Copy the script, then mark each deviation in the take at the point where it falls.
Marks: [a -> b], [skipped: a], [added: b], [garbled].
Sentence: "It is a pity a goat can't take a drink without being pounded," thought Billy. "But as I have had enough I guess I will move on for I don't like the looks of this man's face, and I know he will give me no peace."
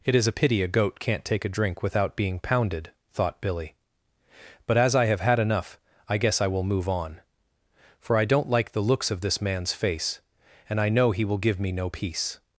"It is a pity a goat can't take a drink without being pounded," thought Billy. "But as I have had enough I guess I will move on for I don't like the looks of this man's face, and I know he will give me no peace."